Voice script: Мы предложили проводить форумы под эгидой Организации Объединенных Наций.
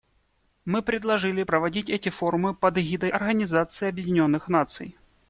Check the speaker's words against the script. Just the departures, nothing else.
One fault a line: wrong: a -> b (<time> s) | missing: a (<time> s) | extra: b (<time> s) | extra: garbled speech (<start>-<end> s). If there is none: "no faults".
extra: эти (1.9 s)